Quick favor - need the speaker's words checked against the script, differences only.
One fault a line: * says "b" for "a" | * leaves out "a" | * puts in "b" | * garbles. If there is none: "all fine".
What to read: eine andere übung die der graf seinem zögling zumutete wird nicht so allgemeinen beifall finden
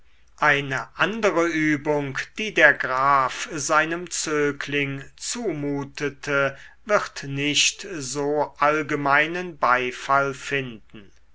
all fine